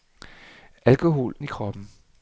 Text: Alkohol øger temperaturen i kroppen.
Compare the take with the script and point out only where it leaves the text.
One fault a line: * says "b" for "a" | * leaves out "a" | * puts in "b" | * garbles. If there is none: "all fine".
* leaves out "øger temperaturen"